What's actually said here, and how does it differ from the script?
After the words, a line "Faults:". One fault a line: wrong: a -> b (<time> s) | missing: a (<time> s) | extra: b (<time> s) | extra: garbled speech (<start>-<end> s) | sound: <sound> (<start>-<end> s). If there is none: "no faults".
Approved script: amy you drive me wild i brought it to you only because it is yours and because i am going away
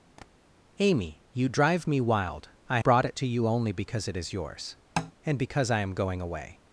amy you drive me wild i brought it to you only because it is yours and because i am going away
Faults:
sound: tap (0.2-0.3 s)
sound: tap (5.0-5.1 s)